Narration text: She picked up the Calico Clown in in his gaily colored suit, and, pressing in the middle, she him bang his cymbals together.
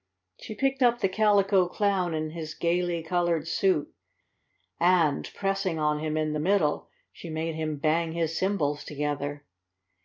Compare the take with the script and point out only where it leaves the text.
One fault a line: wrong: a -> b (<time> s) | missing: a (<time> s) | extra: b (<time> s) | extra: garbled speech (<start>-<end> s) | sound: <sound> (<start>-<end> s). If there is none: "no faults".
missing: in (2.3 s)
extra: on him (5.8 s)
extra: made (7.3 s)